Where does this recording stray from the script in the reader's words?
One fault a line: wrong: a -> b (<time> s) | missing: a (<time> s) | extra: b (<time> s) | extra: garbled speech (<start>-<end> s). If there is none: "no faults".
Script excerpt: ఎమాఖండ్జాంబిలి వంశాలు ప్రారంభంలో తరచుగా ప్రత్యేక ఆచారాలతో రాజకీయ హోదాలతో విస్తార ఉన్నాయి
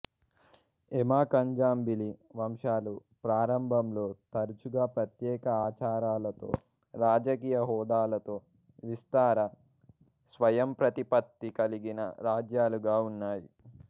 extra: స్వయంప్రతిపత్తి కలిగిన రాజ్యాలుగా (10.3 s)